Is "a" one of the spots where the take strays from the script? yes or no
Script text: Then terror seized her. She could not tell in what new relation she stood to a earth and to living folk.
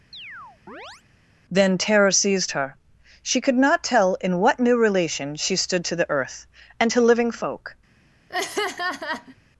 yes